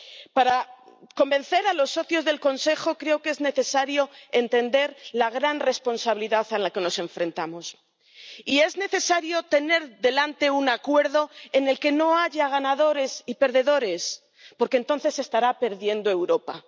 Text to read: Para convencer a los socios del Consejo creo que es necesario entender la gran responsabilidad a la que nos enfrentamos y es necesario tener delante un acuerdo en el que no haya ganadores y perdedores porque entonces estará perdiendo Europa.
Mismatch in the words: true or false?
false